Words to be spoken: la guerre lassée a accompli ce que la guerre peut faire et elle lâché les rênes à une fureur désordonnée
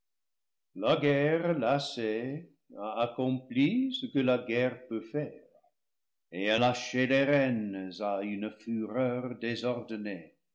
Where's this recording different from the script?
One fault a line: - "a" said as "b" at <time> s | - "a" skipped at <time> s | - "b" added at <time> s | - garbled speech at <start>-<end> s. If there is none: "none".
none